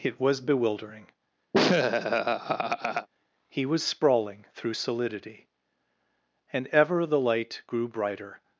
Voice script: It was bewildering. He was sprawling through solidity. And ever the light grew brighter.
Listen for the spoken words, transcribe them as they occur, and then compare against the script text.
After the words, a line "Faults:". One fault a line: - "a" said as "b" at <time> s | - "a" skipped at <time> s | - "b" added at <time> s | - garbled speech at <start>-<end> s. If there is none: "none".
It was bewildering. He was sprawling through solidity. And ever the light grew brighter.
Faults:
none